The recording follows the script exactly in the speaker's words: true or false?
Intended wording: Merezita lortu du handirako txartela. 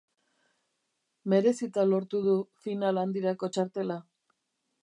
false